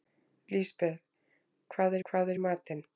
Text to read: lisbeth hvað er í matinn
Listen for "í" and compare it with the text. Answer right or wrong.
right